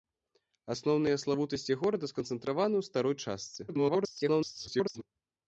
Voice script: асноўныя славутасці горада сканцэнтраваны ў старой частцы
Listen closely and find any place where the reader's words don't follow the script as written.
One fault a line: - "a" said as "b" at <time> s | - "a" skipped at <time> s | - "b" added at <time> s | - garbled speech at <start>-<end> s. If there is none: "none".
- garbled speech at 3.7-5.0 s